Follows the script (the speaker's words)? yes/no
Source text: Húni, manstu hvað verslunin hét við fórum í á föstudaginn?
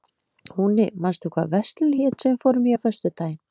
no